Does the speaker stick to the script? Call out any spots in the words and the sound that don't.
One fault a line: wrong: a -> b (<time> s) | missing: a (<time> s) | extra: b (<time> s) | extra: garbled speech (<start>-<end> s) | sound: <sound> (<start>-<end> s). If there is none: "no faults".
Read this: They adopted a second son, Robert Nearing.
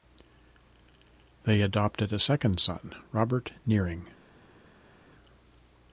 no faults